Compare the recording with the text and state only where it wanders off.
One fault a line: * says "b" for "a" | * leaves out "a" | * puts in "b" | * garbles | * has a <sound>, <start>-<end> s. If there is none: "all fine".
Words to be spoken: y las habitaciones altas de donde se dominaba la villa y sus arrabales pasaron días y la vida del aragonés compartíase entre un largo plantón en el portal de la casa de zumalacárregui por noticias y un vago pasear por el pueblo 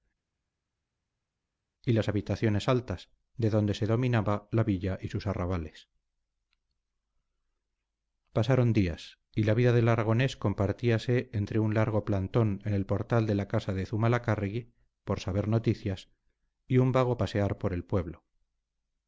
* puts in "saber"